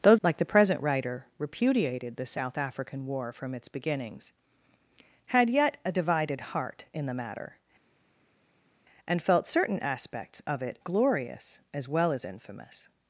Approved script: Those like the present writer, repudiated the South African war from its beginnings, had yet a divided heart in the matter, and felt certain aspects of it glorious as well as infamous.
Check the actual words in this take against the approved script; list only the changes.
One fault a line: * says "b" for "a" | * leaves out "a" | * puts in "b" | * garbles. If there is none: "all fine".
all fine